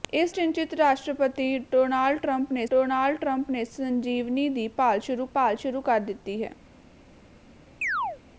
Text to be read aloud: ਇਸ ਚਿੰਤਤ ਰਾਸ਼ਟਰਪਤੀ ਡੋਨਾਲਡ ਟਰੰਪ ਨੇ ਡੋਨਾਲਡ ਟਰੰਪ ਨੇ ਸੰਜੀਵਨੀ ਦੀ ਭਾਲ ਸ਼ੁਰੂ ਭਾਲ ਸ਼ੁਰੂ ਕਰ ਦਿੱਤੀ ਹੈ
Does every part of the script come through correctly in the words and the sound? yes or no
no